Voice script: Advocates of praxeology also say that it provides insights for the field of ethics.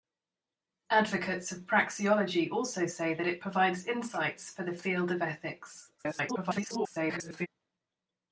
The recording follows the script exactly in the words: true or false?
false